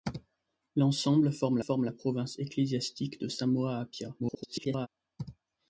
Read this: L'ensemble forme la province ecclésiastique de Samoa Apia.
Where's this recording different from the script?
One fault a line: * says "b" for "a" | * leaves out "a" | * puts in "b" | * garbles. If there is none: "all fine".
* puts in "forme"
* garbles